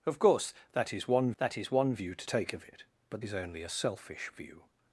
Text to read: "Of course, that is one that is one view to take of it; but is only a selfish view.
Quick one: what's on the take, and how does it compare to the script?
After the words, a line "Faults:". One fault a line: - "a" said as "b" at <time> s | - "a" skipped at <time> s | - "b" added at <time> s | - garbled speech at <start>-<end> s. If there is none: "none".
"Of course, that is one that is one view to take of it; but is only a selfish view.
Faults:
none